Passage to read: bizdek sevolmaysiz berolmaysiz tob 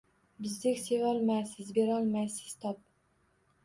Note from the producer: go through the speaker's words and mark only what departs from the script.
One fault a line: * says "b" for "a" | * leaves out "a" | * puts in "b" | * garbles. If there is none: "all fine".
all fine